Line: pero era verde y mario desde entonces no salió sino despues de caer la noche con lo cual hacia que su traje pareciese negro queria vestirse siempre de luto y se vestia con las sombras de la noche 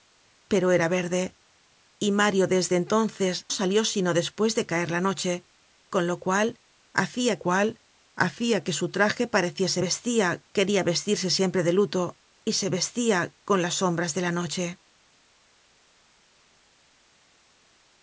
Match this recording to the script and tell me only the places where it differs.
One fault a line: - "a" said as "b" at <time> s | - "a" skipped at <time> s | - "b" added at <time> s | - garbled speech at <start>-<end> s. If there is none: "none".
- "no" skipped at 3.4 s
- "cual hacia" added at 7.4 s
- "negro" said as "vestia" at 9.8 s